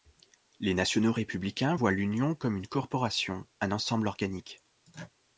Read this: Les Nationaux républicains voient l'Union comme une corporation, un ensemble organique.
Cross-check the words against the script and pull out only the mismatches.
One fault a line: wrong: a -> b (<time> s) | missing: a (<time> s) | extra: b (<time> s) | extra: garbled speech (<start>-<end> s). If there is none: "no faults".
no faults